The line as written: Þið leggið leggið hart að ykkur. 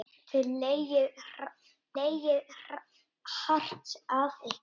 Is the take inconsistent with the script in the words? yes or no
no